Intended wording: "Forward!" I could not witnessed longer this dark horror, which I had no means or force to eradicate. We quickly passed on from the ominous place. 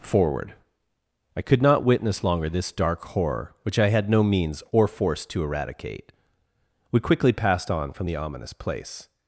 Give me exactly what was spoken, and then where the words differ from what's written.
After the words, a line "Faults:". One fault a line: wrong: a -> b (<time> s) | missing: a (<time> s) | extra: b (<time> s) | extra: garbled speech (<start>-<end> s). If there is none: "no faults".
"Forward!" I could not witness longer this dark horror, which I had no means or force to eradicate. We quickly passed on from the ominous place.
Faults:
wrong: witnessed -> witness (1.8 s)